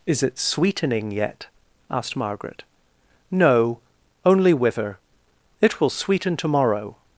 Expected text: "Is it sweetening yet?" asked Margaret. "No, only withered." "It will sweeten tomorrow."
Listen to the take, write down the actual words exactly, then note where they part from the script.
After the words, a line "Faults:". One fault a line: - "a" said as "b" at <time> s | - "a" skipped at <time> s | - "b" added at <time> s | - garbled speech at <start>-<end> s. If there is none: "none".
"Is it sweetening yet?" asked Margaret. "No, only wither." "It will sweeten tomorrow."
Faults:
- "withered" said as "wither" at 4.5 s